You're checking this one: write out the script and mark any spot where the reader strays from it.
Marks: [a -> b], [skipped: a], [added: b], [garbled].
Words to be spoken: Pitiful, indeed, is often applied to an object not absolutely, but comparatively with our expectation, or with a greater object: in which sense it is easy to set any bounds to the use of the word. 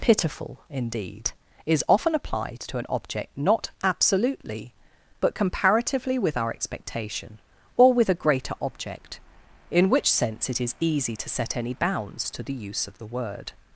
Pitiful, indeed, is often applied to an object not absolutely, but comparatively with our expectation, or with a greater object: in which sense it is easy to set any bounds to the use of the word.